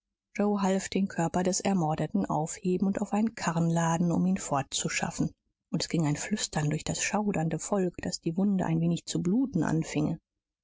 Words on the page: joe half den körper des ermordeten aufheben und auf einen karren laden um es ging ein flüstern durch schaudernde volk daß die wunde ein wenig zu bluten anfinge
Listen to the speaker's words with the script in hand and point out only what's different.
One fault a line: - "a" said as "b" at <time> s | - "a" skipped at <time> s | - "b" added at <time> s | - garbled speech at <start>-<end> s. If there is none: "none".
- "ihn fortzuschaffen und" added at 4.2 s
- "das" added at 6.8 s